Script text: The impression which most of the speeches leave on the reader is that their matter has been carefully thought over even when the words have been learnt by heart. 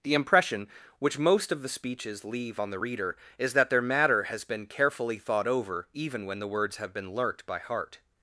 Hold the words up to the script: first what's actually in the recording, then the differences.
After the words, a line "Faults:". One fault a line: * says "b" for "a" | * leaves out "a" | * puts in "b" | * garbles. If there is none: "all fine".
The impression which most of the speeches leave on the reader is that their matter has been carefully thought over even when the words have been learnt by heart.
Faults:
all fine